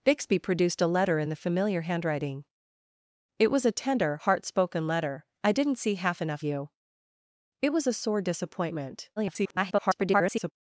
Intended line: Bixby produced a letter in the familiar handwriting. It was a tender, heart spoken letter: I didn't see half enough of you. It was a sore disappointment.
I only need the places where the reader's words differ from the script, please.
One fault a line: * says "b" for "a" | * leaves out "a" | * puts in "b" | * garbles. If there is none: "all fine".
* leaves out "of"
* garbles